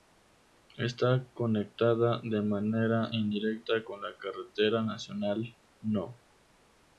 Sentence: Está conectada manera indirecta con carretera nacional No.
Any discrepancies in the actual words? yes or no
yes